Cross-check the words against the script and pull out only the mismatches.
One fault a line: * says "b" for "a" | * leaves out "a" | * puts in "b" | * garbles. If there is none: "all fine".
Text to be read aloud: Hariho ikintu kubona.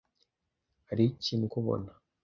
all fine